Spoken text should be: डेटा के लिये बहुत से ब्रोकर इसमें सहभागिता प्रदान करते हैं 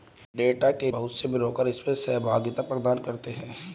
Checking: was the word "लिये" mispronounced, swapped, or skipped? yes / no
yes